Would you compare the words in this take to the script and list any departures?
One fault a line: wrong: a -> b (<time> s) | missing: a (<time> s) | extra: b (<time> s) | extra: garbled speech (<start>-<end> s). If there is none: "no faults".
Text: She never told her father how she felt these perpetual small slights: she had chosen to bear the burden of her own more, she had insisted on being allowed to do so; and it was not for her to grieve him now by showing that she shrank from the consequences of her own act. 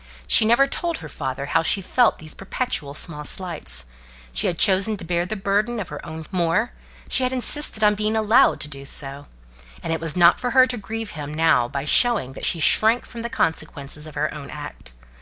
no faults